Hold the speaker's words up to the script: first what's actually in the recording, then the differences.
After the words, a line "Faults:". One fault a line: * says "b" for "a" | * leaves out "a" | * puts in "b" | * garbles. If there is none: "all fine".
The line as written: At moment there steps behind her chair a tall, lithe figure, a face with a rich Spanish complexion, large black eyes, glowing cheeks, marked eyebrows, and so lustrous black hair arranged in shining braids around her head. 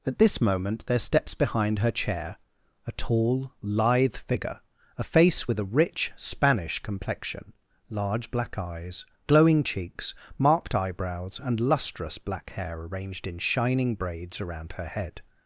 At this moment there steps behind her chair a tall, lithe figure, a face with a rich Spanish complexion, large black eyes, glowing cheeks, marked eyebrows, and lustrous black hair arranged in shining braids around her head.
Faults:
* puts in "this"
* leaves out "so"